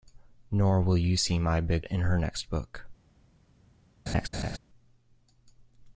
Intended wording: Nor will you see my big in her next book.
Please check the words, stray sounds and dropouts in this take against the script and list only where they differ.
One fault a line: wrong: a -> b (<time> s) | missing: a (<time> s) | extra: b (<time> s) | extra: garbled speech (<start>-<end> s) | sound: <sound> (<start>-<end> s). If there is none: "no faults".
sound: laugh (4.1-4.6 s)